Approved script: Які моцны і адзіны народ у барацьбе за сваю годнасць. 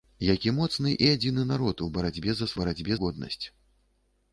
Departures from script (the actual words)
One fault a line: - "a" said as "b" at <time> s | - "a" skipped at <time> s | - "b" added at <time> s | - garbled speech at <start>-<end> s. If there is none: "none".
- "сваю" said as "барацьбе" at 2.6 s